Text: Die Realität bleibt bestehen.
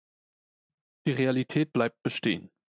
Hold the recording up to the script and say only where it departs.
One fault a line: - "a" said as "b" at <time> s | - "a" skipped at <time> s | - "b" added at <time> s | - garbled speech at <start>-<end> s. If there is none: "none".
none